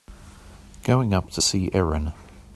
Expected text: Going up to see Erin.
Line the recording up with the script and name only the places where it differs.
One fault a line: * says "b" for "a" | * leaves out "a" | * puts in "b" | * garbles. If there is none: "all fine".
all fine